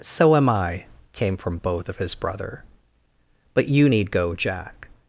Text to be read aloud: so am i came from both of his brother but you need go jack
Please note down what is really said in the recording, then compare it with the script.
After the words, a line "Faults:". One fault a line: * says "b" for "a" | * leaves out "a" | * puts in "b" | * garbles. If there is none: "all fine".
so am i came from both of his brother but you need go jack
Faults:
all fine